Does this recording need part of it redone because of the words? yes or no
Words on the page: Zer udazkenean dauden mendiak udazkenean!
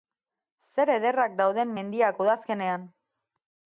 yes